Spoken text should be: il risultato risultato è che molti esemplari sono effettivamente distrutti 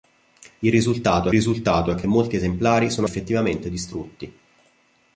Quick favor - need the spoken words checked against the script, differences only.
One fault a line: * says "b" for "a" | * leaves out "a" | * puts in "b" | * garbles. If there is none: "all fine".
all fine